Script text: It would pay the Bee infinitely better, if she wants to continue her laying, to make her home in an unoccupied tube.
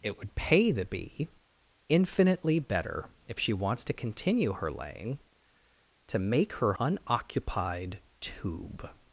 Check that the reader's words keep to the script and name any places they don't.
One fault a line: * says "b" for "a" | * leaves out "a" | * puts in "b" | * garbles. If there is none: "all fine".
* leaves out "home in an"